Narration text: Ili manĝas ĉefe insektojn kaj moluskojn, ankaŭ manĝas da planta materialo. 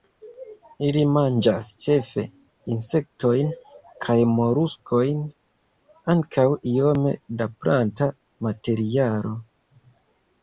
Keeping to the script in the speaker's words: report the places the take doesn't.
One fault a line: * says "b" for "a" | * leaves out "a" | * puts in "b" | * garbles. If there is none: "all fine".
* says "iome" for "manĝas"